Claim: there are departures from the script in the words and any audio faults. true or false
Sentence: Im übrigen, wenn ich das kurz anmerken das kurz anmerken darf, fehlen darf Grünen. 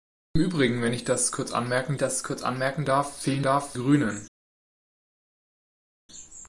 false